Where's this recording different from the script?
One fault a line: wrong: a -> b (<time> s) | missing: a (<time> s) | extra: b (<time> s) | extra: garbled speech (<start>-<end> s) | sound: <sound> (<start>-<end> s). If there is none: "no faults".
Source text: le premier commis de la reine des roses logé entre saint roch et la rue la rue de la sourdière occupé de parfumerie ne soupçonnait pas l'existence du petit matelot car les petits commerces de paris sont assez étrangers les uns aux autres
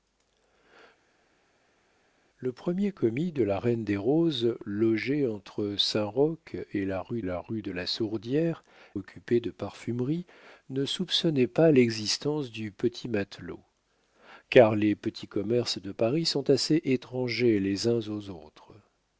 no faults